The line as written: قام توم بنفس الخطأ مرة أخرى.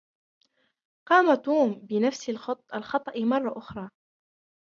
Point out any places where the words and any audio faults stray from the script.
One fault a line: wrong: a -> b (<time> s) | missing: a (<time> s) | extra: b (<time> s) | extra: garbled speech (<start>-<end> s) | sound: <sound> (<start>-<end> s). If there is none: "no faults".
no faults